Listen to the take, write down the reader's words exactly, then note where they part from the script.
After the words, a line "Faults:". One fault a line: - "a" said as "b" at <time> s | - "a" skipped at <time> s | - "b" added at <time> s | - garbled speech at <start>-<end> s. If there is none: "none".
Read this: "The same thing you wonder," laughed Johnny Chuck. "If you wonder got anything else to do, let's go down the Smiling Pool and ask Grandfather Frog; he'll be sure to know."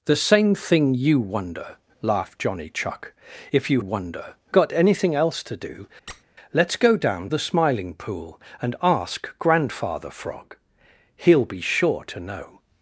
"The same thing you wonder," laughed Johnny Chuck. "If you wonder got anything else to do, let's go down the Smiling Pool and ask Grandfather Frog; he'll be sure to know."
Faults:
none